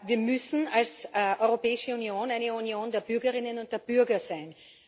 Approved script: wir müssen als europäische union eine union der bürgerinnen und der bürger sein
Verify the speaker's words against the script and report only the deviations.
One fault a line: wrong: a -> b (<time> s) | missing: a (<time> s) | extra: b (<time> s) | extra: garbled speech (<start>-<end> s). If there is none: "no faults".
no faults